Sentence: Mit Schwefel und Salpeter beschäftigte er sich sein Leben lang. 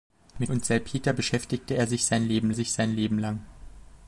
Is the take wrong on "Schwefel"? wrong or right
wrong